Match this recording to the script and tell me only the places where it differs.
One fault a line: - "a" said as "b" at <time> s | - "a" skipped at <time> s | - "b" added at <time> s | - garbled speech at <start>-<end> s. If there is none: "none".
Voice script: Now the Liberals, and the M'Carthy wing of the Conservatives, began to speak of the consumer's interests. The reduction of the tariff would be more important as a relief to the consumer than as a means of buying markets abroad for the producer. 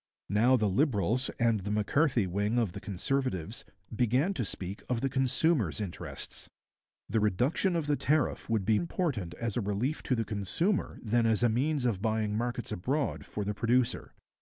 - "more" skipped at 8.8 s